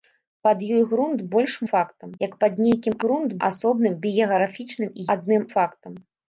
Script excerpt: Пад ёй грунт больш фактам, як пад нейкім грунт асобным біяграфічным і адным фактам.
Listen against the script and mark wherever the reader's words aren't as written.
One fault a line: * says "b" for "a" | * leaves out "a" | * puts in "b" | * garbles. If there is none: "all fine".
all fine